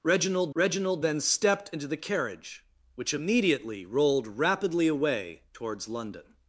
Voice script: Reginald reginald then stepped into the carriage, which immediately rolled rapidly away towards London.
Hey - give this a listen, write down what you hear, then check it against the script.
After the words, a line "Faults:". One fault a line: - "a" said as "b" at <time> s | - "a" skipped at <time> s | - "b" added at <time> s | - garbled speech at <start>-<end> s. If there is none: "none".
Reginald reginald then stepped into the carriage, which immediately rolled rapidly away towards London.
Faults:
none